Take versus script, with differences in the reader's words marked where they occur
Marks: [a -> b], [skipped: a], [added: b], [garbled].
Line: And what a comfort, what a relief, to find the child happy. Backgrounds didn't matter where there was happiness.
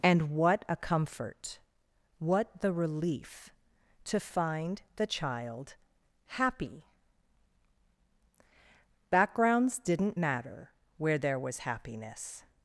And what a comfort, what [a -> the] relief, to find the child happy. Backgrounds didn't matter where there was happiness.